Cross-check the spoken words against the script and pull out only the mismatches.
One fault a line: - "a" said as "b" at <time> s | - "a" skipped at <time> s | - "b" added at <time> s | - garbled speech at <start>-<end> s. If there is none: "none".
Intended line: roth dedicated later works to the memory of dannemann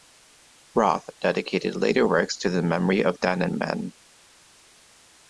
none